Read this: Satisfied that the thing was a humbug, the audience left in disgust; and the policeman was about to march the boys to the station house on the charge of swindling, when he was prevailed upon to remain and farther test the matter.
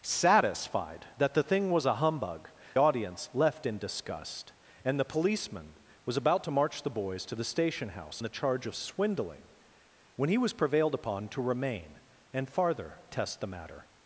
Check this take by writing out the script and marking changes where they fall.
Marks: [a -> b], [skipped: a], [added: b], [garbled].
Satisfied that the thing was a humbug, [skipped: the] audience left in disgust; and the policeman was about to march the boys to the station house [skipped: on] the charge of swindling, when he was prevailed upon to remain and farther test the matter.